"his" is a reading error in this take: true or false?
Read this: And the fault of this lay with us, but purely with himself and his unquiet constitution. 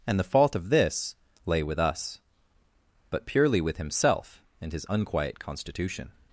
false